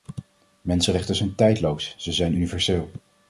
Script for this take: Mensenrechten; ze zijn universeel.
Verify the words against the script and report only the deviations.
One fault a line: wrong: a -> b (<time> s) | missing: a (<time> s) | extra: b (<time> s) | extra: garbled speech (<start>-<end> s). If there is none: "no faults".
extra: zijn tijdloos (1.1 s)